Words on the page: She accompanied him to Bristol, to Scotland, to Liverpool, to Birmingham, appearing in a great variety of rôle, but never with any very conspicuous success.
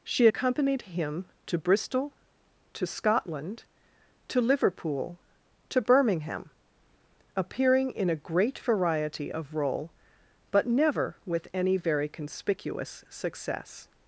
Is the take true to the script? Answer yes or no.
yes